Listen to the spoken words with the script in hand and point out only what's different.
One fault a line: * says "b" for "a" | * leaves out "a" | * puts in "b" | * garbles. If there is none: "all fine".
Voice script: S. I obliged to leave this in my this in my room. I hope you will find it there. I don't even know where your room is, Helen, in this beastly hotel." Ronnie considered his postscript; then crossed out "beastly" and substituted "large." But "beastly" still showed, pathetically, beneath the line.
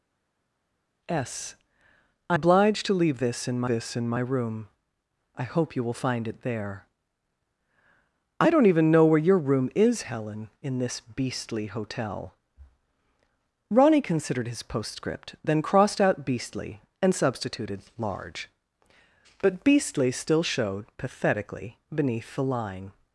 all fine